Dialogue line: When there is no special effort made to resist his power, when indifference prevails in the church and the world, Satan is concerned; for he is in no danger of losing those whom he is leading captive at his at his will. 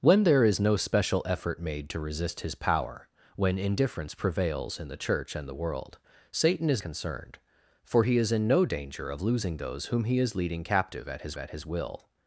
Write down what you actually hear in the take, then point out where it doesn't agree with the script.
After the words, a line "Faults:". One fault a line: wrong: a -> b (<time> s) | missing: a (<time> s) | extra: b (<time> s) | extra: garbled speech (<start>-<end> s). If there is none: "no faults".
When there is no special effort made to resist his power, when indifference prevails in the church and the world, Satan is concerned; for he is in no danger of losing those whom he is leading captive at his at his will.
Faults:
no faults